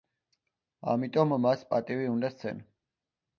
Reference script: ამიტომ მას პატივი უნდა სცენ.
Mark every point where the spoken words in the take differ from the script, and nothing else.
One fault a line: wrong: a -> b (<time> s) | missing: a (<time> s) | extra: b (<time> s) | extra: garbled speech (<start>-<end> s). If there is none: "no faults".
no faults